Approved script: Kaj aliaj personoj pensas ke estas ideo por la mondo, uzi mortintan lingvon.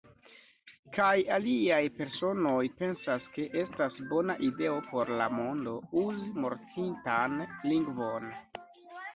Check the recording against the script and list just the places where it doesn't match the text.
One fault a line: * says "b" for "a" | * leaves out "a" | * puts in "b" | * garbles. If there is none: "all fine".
* puts in "bona"